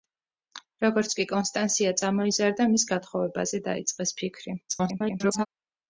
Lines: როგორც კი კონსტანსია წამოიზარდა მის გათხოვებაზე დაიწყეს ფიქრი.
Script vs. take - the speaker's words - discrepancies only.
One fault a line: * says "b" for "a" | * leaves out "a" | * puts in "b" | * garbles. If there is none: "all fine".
* garbles